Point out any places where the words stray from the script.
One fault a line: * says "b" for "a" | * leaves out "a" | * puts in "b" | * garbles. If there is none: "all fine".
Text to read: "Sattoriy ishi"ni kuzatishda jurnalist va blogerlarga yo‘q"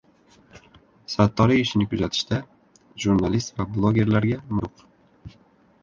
all fine